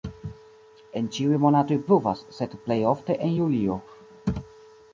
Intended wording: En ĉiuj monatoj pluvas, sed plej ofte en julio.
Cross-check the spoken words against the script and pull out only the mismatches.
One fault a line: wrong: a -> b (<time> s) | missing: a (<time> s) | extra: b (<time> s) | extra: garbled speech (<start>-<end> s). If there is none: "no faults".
no faults